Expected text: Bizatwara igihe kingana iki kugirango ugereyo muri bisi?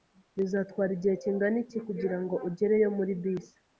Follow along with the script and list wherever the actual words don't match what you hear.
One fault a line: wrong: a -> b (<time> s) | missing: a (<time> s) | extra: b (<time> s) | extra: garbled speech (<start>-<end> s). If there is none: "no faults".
no faults